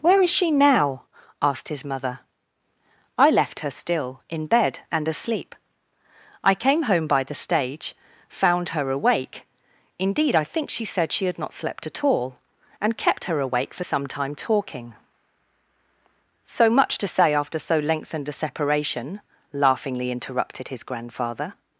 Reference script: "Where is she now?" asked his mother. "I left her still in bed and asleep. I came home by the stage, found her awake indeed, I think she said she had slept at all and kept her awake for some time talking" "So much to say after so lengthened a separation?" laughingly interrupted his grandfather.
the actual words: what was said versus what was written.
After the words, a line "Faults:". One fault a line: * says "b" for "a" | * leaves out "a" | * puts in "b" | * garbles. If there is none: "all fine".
"Where is she now?" asked his mother. "I left her still in bed and asleep. I came home by the stage, found her awake indeed, I think she said she had not slept at all and kept her awake for some time talking" "So much to say after so lengthened a separation?" laughingly interrupted his grandfather.
Faults:
* puts in "not"